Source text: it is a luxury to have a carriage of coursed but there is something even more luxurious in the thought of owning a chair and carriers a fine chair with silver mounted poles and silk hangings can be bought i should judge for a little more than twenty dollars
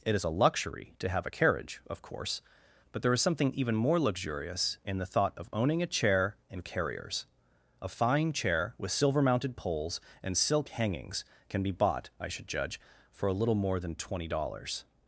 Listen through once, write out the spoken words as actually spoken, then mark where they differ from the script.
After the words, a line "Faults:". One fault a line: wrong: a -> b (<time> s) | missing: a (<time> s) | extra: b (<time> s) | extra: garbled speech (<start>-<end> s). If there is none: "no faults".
it is a luxury to have a carriage of course but there is something even more luxurious in the thought of owning a chair and carriers a fine chair with silver mounted poles and silk hangings can be bought i should judge for a little more than twenty dollars
Faults:
wrong: coursed -> course (2.0 s)